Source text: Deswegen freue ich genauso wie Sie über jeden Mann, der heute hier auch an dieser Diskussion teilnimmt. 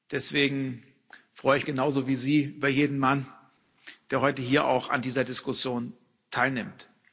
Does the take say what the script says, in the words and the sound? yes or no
yes